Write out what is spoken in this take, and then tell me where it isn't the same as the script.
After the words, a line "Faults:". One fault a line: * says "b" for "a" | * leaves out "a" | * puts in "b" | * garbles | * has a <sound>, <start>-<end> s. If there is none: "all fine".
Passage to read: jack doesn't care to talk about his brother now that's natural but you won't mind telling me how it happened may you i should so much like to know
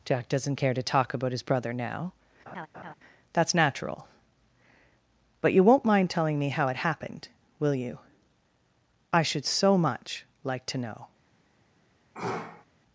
jack doesn't care to talk about his brother now that's natural but you won't mind telling me how it happened will you i should so much like to know
Faults:
* has a laugh, 2.5-2.9 s
* says "will" for "may"
* has a sneeze, 12.1-12.7 s